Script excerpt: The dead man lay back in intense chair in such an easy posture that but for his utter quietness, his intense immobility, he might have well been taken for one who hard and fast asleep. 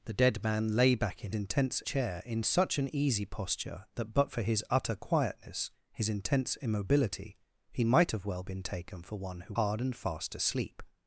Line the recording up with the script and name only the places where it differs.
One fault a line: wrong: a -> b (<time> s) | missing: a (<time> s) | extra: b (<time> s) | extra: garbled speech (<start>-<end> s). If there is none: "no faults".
no faults